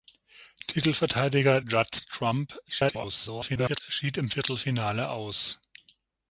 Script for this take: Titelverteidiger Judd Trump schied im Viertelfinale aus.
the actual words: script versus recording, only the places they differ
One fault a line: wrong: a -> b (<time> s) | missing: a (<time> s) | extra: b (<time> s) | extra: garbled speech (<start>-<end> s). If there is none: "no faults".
extra: garbled speech (2.7-3.8 s)